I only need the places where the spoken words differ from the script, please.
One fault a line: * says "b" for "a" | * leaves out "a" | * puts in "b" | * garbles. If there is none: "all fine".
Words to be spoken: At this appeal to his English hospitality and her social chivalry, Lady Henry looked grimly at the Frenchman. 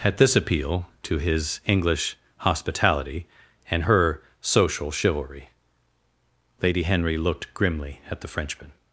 all fine